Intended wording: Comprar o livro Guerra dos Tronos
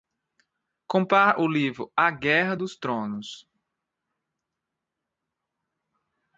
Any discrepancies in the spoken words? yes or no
yes